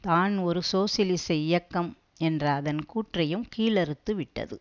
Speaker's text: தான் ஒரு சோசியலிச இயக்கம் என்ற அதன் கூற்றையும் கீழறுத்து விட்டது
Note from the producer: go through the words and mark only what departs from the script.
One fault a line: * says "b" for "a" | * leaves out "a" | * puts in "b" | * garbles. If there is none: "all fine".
all fine